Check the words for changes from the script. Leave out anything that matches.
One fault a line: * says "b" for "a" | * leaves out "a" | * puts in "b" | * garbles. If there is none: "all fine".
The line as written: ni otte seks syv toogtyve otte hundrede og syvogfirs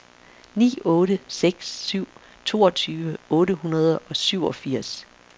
all fine